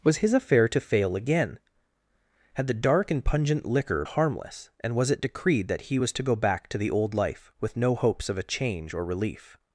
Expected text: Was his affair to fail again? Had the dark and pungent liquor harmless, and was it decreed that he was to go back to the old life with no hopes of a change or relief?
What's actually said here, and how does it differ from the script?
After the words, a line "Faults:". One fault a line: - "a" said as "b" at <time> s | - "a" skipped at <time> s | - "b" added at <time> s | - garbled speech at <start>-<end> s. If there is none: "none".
Was his affair to fail again? Had the dark and pungent liquor harmless, and was it decreed that he was to go back to the old life with no hopes of a change or relief?
Faults:
none